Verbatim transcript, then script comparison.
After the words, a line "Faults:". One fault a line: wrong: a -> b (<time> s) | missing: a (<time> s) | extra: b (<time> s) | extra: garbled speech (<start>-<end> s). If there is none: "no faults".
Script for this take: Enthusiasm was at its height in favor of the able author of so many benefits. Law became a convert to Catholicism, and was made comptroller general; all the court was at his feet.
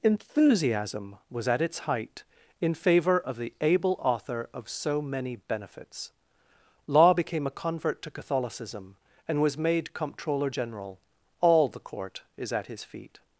Enthusiasm was at its height in favor of the able author of so many benefits. Law became a convert to Catholicism, and was made comptroller general; all the court is at his feet.
Faults:
wrong: was -> is (12.4 s)